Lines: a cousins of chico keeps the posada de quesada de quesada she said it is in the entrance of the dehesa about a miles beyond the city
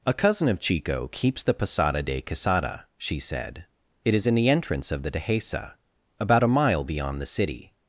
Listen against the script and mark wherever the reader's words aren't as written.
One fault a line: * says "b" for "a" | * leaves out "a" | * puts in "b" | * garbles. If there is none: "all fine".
* says "cousin" for "cousins"
* leaves out "de quesada"
* says "mile" for "miles"